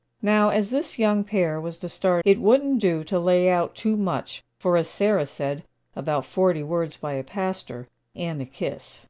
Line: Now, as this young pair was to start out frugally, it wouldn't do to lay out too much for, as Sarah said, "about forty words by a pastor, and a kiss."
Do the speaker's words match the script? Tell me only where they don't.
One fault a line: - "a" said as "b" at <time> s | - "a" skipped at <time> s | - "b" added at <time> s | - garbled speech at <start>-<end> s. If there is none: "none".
- "out frugally" skipped at 2.2 s